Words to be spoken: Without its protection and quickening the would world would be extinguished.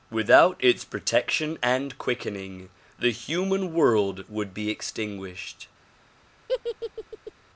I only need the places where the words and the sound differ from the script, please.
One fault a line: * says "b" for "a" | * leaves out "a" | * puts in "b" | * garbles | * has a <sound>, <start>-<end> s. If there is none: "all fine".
* says "human" for "would"
* has a laugh, 6.5-7.3 s